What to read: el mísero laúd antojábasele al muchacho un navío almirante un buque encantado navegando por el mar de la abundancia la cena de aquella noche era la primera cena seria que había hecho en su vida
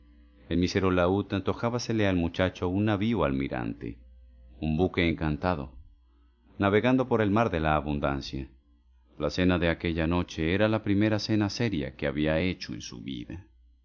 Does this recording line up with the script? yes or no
yes